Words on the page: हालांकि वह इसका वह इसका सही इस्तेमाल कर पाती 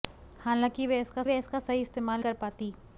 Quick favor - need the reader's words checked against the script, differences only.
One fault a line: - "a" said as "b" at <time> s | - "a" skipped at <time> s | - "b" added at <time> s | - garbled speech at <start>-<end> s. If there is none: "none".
none